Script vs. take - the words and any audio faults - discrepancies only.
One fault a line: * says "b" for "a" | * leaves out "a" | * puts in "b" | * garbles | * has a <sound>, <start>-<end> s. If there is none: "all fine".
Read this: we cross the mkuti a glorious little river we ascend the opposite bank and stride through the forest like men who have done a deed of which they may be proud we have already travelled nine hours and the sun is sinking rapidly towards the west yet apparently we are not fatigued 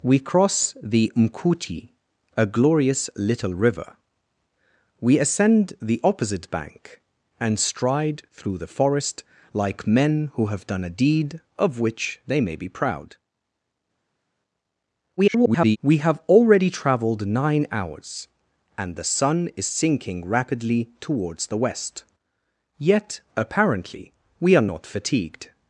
* garbles